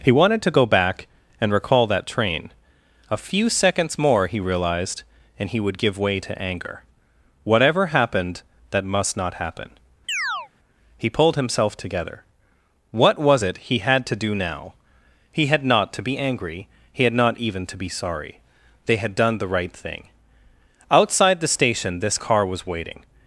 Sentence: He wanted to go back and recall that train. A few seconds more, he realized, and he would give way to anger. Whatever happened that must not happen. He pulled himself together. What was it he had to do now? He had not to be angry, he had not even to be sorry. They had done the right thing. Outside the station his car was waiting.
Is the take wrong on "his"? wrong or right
wrong